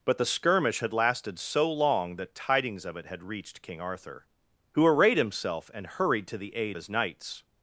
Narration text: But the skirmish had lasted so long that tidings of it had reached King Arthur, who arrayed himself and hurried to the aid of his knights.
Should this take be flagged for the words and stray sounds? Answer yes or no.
yes